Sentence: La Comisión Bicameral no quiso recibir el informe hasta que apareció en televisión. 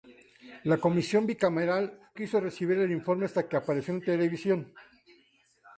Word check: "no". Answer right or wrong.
wrong